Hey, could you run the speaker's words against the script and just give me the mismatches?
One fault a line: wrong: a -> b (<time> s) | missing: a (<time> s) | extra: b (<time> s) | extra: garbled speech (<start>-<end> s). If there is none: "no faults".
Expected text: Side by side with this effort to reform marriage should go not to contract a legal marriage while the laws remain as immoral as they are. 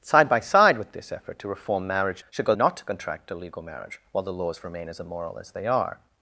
no faults